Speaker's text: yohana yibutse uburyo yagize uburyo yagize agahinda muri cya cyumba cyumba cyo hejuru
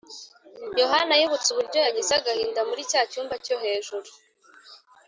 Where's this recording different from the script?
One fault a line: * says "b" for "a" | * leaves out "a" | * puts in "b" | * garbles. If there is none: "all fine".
* leaves out "uburyo yagize"
* leaves out "cyumba"